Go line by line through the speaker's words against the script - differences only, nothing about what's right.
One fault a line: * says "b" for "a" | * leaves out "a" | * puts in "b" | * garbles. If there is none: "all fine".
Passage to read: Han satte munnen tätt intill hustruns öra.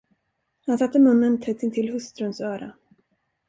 all fine